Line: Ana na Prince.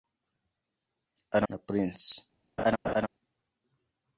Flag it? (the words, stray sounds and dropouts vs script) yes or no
yes